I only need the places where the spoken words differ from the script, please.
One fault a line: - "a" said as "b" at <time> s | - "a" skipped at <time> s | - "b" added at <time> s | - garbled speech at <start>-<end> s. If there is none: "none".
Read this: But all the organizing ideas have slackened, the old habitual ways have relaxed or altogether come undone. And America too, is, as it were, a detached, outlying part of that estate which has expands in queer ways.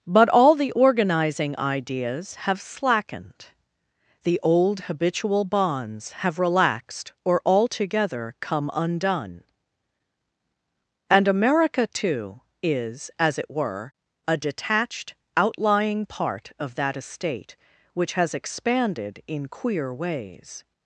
- "ways" said as "bonds" at 5.5 s
- "expands" said as "expanded" at 18.3 s